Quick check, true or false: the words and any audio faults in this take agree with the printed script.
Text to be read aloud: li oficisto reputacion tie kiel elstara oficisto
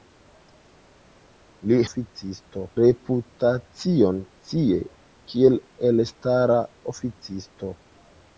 true